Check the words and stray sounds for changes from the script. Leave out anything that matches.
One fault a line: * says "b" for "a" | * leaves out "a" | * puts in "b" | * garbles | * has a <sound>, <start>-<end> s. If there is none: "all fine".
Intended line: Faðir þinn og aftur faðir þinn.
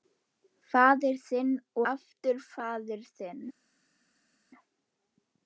* leaves out "og"